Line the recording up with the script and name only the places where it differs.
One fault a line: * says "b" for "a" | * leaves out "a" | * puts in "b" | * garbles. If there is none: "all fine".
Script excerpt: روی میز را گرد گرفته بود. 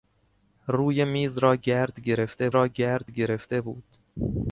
* puts in "را گرد گرفته"